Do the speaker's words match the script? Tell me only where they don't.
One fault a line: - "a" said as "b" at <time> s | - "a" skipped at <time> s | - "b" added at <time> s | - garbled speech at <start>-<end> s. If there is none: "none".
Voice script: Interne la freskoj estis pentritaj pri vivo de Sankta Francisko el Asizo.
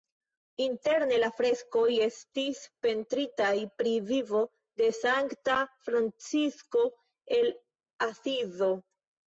none